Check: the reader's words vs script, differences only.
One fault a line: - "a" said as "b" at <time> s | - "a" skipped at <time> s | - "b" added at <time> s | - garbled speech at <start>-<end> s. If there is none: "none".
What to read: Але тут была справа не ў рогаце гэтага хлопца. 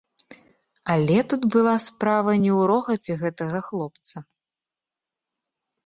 none